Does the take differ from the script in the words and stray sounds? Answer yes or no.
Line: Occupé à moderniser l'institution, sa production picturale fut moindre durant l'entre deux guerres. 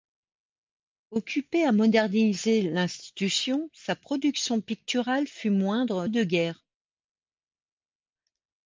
yes